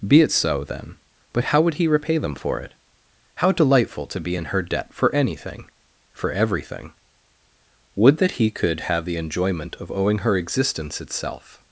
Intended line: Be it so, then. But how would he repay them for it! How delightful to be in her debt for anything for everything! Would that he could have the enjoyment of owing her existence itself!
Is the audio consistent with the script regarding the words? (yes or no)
yes